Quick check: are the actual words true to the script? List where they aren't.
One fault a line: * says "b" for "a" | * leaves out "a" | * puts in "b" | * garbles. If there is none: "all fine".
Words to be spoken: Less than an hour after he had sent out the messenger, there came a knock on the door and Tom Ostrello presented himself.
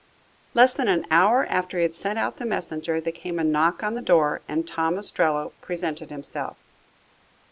all fine